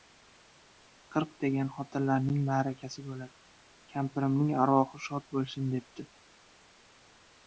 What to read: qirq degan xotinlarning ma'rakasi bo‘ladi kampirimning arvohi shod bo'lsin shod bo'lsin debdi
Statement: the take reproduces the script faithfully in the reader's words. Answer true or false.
false